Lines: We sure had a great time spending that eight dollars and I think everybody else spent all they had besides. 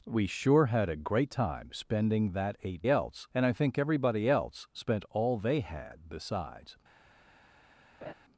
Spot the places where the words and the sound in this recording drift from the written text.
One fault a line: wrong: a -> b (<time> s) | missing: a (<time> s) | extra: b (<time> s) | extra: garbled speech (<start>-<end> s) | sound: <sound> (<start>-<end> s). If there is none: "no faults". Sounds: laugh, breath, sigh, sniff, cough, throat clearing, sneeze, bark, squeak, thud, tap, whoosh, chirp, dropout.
wrong: dollars -> else (2.9 s)
sound: laugh (8.0-8.1 s)